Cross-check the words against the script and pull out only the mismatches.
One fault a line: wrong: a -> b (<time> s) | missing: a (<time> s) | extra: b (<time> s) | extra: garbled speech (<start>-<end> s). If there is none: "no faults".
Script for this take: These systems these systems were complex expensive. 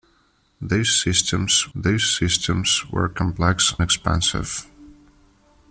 no faults